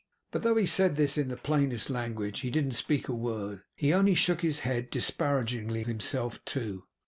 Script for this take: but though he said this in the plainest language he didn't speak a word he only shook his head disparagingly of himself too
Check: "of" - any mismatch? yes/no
yes